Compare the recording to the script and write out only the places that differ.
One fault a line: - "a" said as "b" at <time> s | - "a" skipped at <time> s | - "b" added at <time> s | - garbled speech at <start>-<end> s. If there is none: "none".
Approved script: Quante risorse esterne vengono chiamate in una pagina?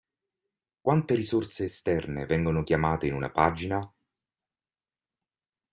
none